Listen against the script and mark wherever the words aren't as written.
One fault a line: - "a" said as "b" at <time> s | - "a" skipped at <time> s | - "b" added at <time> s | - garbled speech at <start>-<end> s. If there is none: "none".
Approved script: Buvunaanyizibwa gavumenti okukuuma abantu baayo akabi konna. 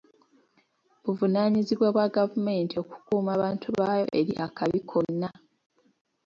- "bwa" added at 1.9 s
- "eri" added at 4.2 s